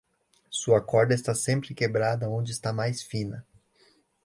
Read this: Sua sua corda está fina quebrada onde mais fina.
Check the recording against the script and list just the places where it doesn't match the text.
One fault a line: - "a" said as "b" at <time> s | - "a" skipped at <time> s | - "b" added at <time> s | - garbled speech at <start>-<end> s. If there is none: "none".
- "sua" skipped at 0.8 s
- "fina" said as "sempre" at 1.4 s
- "está" added at 2.5 s